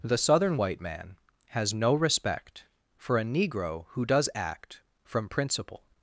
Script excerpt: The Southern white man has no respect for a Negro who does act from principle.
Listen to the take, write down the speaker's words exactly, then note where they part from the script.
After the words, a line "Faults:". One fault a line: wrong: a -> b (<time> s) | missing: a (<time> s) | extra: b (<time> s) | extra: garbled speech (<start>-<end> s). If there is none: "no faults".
The Southern white man has no respect for a Negro who does act from principle.
Faults:
no faults